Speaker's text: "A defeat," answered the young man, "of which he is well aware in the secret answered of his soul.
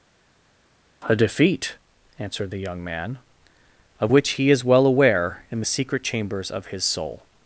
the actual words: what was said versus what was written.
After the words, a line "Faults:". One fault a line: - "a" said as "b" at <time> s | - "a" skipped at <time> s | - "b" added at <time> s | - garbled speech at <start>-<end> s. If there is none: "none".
"A defeat," answered the young man, "of which he is well aware in the secret chambers of his soul.
Faults:
- "answered" said as "chambers" at 6.0 s